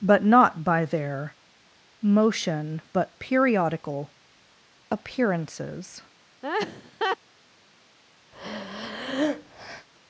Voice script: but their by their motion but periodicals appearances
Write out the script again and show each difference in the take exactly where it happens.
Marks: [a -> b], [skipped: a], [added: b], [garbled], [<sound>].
but [their -> not] by their motion but [periodicals -> periodical] appearances [laugh] [breath]